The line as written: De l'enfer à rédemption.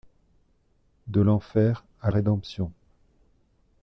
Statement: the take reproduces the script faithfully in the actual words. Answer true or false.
true